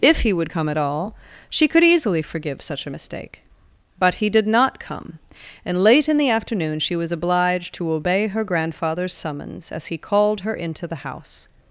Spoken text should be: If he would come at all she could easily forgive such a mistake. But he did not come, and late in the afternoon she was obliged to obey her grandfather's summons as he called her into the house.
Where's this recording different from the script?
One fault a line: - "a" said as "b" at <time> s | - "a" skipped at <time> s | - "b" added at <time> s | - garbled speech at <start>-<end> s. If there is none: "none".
none